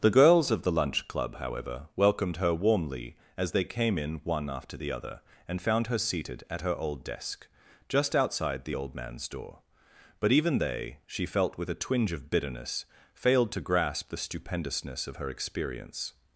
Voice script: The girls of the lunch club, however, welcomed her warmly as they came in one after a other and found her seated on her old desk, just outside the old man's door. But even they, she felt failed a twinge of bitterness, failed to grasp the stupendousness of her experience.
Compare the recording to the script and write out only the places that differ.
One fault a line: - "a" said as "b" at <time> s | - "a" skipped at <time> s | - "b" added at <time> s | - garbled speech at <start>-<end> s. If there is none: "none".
- "a" said as "the" at 4.8 s
- "on" said as "at" at 6.5 s
- "failed" said as "with" at 11.6 s